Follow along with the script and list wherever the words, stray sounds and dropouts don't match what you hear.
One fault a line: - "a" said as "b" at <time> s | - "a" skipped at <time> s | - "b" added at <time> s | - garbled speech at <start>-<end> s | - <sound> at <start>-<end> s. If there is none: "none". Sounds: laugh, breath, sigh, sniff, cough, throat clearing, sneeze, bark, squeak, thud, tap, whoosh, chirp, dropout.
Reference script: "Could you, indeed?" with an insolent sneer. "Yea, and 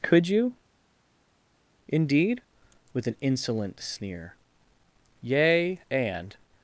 none